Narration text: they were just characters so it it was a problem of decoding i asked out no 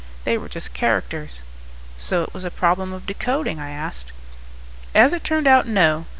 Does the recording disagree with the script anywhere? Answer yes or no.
yes